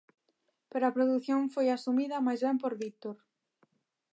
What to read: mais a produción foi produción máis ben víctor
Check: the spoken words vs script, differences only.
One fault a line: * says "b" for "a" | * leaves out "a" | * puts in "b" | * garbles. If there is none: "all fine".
* says "pero" for "mais"
* says "asumida" for "produción"
* puts in "por"